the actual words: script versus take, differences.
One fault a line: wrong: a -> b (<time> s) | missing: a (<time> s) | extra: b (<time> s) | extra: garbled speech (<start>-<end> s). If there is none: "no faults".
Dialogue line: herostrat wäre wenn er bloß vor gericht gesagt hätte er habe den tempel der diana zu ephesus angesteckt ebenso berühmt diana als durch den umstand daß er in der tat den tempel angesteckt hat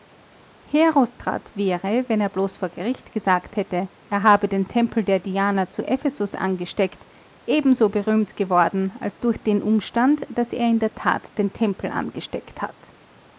wrong: diana -> geworden (8.3 s)